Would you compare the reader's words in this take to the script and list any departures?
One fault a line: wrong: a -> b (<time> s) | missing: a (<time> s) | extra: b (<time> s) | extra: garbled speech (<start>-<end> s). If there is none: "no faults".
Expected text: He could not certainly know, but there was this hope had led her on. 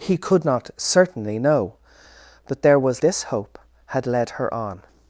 no faults